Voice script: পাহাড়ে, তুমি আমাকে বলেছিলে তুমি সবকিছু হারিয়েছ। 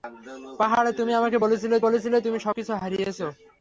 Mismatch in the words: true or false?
true